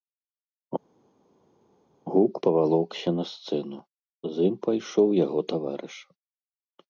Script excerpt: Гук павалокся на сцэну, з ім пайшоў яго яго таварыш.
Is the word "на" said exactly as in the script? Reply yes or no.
yes